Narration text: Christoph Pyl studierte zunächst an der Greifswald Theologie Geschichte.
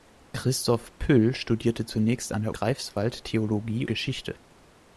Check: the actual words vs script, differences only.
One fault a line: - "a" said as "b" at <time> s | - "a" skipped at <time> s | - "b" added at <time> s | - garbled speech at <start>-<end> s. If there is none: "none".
none